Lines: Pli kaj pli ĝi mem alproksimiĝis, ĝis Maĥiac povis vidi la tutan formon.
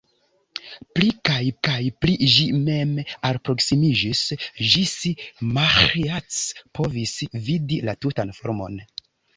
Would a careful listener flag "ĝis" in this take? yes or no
no